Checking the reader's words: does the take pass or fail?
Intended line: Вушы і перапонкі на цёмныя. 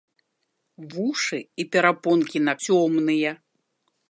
pass